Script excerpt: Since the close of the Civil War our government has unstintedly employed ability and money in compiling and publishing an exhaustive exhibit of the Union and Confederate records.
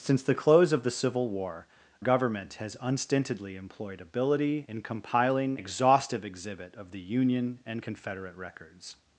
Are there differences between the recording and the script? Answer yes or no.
yes